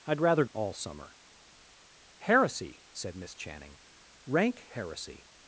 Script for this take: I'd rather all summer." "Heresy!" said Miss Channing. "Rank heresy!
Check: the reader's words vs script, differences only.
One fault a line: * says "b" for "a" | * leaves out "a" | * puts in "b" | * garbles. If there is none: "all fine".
all fine